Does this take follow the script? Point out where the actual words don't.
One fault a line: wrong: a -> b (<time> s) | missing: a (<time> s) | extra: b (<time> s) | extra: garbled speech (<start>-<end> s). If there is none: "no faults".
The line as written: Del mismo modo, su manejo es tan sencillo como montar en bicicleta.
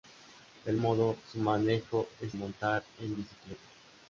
missing: mismo (0.8 s)
missing: tan sencillo como (2.3 s)